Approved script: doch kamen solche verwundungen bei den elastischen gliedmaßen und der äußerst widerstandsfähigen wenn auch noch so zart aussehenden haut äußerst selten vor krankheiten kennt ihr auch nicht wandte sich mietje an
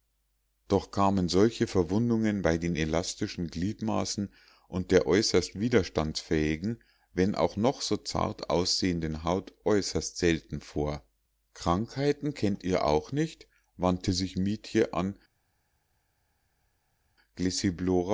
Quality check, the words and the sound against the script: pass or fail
pass